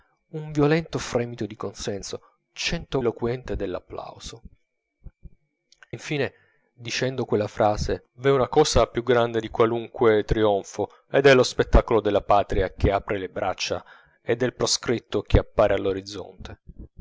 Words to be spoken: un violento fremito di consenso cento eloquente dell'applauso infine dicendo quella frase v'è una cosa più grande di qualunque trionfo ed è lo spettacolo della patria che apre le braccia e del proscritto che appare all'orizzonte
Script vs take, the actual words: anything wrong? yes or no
no